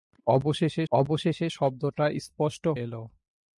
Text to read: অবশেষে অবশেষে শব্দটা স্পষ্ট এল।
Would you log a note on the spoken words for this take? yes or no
no